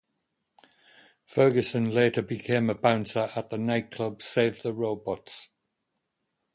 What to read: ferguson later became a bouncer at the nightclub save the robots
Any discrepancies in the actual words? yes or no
no